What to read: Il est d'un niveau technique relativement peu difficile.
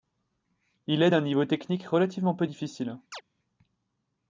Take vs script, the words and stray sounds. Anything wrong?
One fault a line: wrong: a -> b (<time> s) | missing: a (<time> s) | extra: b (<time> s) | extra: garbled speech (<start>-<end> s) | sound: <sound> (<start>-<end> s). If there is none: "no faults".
sound: chirp (3.1-3.2 s)